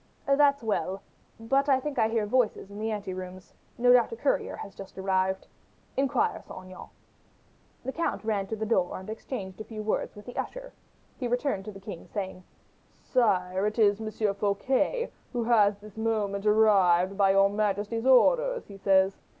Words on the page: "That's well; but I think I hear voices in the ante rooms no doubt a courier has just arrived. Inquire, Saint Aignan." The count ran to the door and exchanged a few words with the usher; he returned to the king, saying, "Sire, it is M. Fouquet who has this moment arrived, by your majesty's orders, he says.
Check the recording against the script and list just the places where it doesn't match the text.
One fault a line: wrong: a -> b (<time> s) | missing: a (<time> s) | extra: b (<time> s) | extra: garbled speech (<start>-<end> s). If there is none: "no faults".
no faults